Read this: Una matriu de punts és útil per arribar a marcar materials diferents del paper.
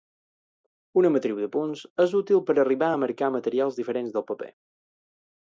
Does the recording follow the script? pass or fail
pass